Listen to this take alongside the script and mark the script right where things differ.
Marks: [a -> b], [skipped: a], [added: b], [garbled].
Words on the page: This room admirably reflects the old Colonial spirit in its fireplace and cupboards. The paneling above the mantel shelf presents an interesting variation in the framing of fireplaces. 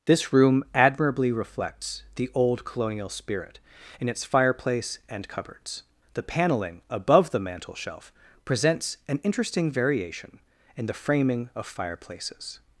This room admirably reflects the old Colonial spirit in its fireplace and cupboards. The paneling above the mantel shelf presents an interesting variation in the framing of fireplaces.